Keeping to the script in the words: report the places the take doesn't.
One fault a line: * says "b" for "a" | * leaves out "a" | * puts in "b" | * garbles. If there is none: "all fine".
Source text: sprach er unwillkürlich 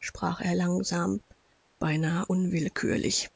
* puts in "langsam beinahe"